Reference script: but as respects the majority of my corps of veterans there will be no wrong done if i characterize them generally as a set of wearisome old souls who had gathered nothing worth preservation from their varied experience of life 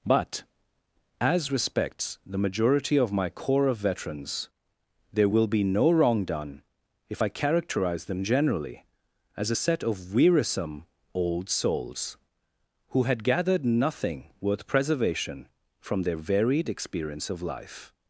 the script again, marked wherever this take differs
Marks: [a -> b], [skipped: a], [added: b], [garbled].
but as respects the majority of my corps of veterans there will be no wrong done if i characterize them generally as a set of wearisome old souls who had gathered nothing worth preservation from their varied experience of life